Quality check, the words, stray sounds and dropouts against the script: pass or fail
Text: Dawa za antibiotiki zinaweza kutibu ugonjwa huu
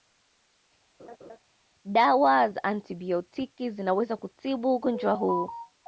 fail